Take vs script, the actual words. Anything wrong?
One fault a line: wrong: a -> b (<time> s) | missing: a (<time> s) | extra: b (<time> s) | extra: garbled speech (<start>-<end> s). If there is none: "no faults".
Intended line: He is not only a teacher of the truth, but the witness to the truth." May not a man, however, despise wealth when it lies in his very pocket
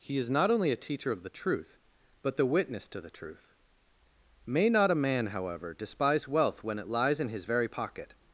no faults